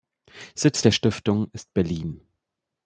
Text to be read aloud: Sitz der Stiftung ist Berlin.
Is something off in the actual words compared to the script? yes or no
no